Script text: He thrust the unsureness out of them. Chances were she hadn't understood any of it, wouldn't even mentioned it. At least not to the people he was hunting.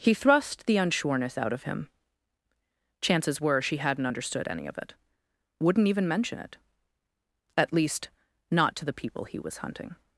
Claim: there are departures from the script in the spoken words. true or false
true